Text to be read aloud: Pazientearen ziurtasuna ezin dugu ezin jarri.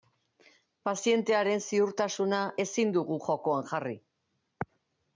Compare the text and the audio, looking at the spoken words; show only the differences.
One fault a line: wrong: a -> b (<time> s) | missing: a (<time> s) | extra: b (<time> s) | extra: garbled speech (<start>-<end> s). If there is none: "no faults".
wrong: ezin -> jokoan (3.3 s)